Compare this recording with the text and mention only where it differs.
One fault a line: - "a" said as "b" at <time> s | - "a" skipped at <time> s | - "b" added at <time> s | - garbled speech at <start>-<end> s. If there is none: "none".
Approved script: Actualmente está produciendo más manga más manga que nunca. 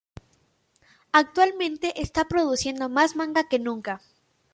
- "más manga" skipped at 3.4 s